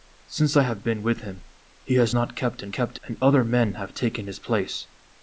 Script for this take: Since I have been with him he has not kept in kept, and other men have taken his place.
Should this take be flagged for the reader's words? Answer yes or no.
no